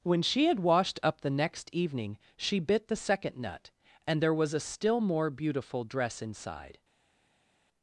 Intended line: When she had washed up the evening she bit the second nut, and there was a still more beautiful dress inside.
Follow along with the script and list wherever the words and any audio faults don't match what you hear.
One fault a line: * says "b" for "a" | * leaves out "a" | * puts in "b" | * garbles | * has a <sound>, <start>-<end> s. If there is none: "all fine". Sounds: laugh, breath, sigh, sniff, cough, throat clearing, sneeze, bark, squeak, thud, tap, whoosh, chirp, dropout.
* puts in "next"